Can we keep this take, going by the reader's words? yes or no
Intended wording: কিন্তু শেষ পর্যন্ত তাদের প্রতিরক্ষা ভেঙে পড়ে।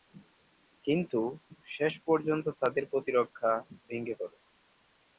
yes